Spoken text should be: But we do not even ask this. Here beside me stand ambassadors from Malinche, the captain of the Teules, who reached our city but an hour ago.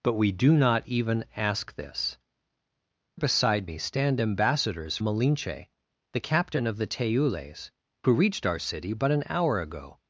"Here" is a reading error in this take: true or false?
true